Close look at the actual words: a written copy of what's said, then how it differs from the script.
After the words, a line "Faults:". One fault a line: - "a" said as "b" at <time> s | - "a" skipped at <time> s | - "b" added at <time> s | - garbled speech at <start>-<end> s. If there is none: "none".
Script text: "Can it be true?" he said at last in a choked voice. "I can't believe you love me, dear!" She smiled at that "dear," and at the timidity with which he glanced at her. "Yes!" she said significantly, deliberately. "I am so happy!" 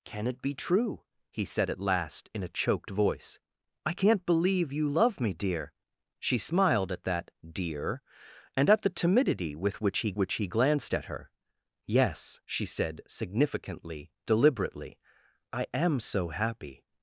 "Can it be true?" he said at last in a choked voice. "I can't believe you love me, dear!" She smiled at that "dear," and at the timidity with which he which he glanced at her. "Yes!" she said significantly, deliberately. "I am so happy!"
Faults:
- "which he" added at 10.1 s